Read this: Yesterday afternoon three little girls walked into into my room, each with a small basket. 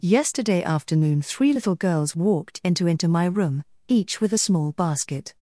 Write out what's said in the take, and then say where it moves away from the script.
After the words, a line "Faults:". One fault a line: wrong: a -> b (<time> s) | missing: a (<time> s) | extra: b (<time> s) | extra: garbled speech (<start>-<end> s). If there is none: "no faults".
Yesterday afternoon three little girls walked into into my room, each with a small basket.
Faults:
no faults